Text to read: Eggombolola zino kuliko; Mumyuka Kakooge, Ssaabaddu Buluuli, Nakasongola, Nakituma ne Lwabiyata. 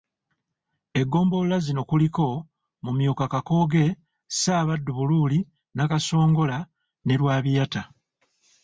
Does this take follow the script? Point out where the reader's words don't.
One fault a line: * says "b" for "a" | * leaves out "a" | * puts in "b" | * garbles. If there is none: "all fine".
* leaves out "Nakituma"